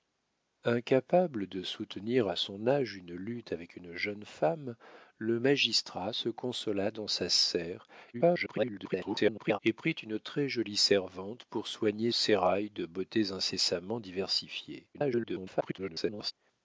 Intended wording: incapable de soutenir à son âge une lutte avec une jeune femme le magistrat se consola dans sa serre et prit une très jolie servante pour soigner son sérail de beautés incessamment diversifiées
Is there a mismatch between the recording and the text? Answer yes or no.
yes